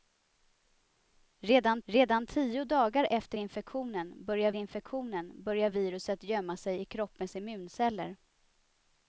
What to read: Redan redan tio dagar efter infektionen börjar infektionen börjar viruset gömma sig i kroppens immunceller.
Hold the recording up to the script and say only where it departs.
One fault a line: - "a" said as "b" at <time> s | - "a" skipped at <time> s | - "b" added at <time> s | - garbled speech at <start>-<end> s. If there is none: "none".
none